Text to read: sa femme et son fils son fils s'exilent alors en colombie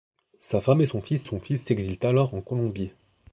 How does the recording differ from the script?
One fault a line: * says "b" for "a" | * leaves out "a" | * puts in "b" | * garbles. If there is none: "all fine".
all fine